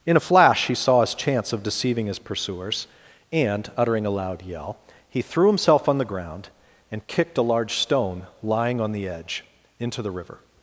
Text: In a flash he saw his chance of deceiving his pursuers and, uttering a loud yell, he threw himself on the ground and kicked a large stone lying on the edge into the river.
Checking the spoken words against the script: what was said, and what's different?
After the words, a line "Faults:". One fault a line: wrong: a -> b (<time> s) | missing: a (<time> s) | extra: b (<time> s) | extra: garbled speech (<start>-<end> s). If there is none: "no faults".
In a flash he saw his chance of deceiving his pursuers and, uttering a loud yell, he threw himself on the ground and kicked a large stone lying on the edge into the river.
Faults:
no faults